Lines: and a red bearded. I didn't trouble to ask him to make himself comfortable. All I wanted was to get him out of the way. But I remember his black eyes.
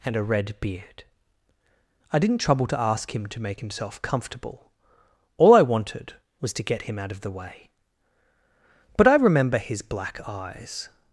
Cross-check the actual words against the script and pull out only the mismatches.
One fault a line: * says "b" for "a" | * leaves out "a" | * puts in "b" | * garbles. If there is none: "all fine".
* says "beard" for "bearded"